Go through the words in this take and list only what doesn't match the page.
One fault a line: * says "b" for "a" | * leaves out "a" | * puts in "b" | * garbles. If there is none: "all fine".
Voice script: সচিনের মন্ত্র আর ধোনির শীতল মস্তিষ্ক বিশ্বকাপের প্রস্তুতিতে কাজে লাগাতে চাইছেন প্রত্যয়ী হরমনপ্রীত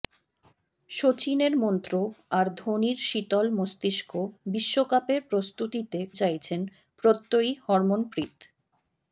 * leaves out "কাজে লাগাতে"